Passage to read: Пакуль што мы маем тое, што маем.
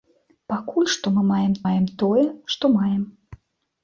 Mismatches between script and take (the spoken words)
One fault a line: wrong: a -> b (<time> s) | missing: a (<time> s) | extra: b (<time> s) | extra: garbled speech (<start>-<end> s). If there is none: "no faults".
extra: маем (1.6 s)